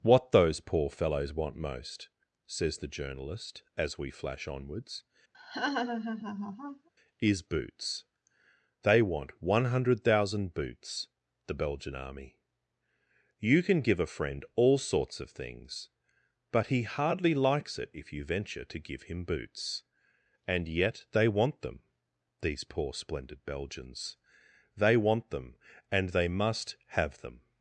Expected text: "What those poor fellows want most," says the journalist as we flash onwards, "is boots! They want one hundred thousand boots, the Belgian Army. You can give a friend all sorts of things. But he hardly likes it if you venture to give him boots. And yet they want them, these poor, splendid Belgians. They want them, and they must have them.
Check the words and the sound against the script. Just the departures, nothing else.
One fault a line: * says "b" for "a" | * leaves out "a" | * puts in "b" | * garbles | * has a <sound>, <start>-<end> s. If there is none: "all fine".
* has a laugh, 5.3-6.9 s